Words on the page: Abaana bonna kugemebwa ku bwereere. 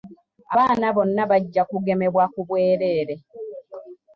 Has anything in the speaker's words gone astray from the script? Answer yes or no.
yes